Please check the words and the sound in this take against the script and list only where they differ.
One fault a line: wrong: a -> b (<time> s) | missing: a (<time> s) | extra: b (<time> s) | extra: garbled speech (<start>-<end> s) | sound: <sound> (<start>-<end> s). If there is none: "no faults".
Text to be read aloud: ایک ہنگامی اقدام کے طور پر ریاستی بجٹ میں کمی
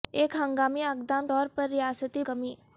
missing: کے (1.3 s)
missing: بجٹ میں (2.2 s)